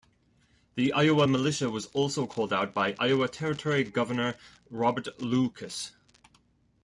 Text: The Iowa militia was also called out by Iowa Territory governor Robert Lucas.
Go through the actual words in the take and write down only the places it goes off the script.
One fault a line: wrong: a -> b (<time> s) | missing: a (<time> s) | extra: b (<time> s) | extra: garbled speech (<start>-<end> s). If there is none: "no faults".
no faults